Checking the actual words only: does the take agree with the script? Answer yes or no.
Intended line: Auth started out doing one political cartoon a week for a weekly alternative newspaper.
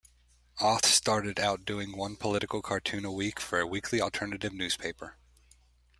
yes